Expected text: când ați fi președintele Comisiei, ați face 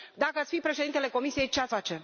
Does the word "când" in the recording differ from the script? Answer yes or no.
yes